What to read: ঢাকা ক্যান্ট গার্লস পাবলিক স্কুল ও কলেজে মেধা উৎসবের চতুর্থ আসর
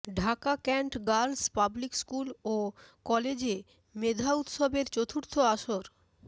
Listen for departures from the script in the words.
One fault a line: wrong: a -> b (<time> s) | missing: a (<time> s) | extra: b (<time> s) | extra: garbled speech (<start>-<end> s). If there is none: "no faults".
no faults